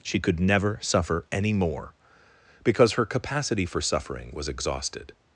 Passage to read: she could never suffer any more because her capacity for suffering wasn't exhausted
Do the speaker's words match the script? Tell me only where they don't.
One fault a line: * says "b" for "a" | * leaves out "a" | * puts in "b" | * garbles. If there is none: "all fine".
* says "was" for "wasn't"